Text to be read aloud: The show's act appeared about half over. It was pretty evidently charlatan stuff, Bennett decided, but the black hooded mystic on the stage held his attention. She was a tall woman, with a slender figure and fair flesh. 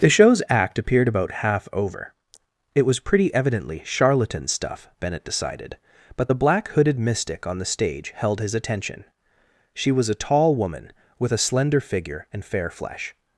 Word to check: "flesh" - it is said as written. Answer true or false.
true